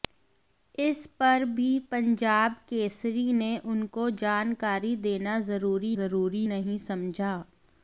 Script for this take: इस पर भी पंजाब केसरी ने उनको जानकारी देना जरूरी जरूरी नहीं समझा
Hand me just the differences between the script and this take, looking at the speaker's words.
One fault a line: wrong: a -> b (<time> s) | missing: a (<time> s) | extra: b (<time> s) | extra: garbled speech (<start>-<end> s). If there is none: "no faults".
no faults